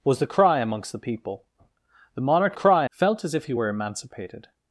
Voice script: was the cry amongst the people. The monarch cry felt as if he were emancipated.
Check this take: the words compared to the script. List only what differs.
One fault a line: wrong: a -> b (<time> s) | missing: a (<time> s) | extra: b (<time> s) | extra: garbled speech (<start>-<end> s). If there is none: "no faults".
no faults